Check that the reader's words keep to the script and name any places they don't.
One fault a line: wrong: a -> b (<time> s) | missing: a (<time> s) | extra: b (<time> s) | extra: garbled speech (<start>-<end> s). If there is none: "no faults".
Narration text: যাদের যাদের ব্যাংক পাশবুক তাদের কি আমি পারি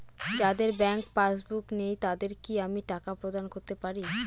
missing: যাদের (0.7 s)
extra: নেই (1.8 s)
extra: টাকা প্রদান করতে (2.9 s)